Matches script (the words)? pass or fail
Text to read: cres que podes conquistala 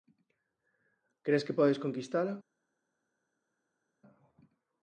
pass